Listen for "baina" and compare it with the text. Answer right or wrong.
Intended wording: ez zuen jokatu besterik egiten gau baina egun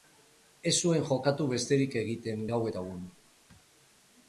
wrong